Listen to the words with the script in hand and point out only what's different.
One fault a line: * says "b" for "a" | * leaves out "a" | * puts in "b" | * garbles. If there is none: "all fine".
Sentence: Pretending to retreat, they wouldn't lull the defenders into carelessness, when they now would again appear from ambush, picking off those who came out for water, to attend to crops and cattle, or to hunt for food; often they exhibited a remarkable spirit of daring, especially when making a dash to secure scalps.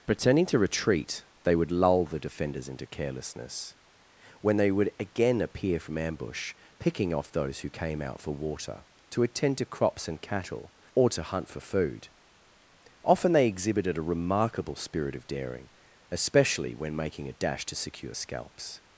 * says "would" for "wouldn't"
* leaves out "now"